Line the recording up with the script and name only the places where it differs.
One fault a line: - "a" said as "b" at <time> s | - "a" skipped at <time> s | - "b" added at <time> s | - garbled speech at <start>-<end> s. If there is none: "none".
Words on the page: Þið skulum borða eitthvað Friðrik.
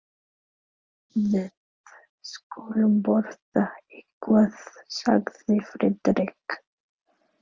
- "Þið" said as "Við" at 1.3 s
- "sagði" added at 5.0 s